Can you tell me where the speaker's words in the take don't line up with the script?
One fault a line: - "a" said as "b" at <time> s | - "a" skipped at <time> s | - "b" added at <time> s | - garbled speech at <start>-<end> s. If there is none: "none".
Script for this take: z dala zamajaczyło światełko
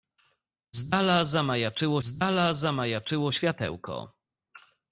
- "z dala zamajaczyło" added at 2.0 s